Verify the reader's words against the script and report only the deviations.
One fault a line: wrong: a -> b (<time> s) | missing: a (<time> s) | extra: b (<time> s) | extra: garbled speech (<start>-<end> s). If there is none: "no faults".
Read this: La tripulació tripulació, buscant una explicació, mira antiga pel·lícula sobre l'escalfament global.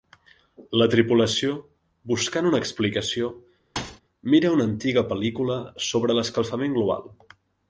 missing: tripulació (1.6 s)
extra: una (4.6 s)